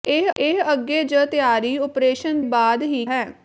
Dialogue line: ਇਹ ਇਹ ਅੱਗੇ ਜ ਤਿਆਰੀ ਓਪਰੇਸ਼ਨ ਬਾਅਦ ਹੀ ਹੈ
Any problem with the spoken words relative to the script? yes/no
no